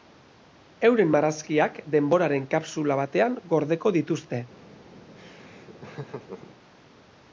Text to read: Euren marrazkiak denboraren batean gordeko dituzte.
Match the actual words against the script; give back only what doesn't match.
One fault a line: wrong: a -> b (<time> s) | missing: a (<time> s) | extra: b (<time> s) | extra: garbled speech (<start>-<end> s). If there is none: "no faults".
extra: kapsula (2.5 s)